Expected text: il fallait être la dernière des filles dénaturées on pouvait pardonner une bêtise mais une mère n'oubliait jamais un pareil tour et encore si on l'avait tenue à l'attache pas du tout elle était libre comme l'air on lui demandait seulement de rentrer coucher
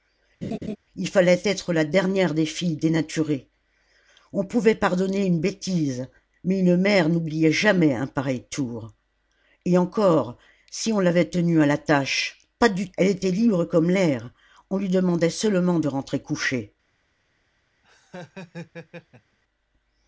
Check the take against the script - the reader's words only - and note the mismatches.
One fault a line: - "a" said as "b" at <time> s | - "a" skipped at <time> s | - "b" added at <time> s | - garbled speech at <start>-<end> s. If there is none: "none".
- "tout" skipped at 12.9 s